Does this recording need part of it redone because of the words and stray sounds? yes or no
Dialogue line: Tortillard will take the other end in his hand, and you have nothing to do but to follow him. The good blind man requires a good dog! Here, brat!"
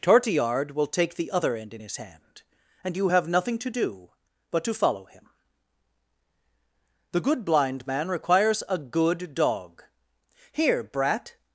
no